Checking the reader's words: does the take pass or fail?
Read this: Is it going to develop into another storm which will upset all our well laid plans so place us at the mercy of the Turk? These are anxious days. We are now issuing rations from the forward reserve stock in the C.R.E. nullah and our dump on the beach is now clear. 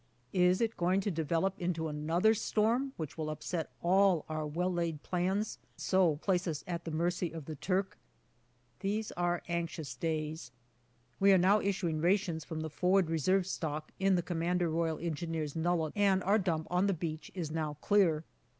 pass